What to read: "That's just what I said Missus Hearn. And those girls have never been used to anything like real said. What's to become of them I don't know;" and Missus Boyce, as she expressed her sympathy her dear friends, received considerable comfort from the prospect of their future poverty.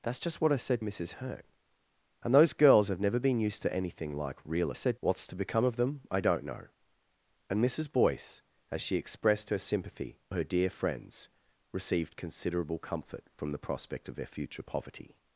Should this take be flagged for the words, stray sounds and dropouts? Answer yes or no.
no